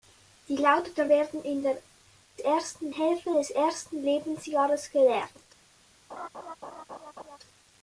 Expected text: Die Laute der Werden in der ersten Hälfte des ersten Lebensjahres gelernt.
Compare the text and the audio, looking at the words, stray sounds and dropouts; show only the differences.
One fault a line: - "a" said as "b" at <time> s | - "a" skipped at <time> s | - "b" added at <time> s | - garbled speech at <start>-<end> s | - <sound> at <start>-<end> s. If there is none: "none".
- laugh at 6.1-7.4 s